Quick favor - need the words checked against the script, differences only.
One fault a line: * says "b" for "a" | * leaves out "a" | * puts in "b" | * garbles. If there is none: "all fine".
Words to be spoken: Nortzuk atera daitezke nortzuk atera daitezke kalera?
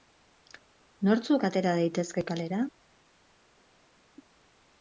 * leaves out "nortzuk atera daitezke"